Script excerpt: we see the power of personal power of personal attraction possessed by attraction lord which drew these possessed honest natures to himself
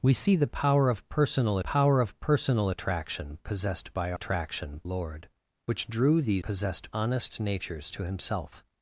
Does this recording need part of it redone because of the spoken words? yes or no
no